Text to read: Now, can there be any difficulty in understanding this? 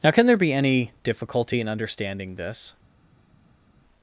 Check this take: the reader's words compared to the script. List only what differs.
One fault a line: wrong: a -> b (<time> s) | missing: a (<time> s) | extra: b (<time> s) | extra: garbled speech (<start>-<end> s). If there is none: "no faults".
no faults